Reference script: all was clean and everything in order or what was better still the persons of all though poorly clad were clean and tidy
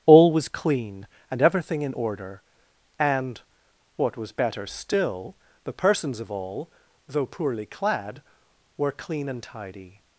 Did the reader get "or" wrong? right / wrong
wrong